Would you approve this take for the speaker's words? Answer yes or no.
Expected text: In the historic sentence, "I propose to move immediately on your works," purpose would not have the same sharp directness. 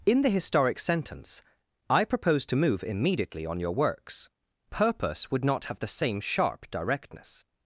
yes